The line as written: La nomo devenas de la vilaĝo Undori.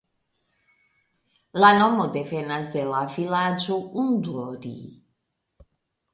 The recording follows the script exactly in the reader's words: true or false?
true